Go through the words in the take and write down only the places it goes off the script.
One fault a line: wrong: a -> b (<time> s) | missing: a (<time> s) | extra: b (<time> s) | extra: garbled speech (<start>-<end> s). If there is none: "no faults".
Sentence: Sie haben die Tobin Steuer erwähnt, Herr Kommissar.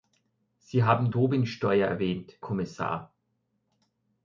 missing: die (1.1 s)
missing: Herr (2.3 s)